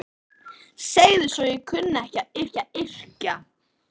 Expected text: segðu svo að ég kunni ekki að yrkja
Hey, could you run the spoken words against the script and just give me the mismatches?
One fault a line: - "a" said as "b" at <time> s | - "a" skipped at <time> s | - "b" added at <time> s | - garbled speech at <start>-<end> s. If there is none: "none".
- "ekki að" added at 2.4 s